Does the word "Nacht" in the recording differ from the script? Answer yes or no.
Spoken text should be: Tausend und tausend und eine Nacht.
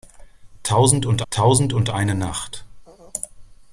no